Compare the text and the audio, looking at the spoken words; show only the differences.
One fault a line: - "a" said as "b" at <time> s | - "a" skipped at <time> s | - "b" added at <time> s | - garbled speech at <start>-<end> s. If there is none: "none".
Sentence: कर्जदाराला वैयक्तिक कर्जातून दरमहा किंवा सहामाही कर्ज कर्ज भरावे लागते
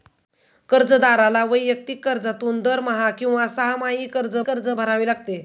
none